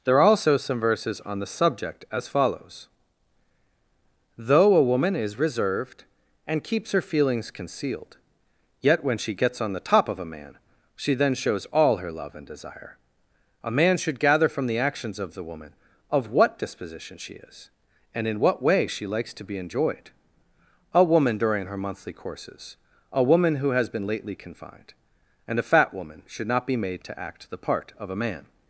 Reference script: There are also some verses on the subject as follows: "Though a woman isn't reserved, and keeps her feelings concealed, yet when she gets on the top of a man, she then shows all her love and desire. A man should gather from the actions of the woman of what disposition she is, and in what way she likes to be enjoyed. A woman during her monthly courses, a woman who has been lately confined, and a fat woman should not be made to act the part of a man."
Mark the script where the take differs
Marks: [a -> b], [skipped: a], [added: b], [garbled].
There are also some verses on the subject as follows: "Though a woman [isn't -> is] reserved, and keeps her feelings concealed, yet when she gets on the top of a man, she then shows all her love and desire. A man should gather from the actions of the woman of what disposition she is, and in what way she likes to be enjoyed. A woman during her monthly courses, a woman who has been lately confined, and a fat woman should not be made to act the part of a man."